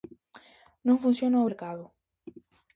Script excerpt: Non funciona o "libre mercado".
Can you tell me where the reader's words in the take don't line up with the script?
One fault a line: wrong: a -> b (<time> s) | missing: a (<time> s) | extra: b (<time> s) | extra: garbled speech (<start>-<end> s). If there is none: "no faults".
missing: libre (1.5 s)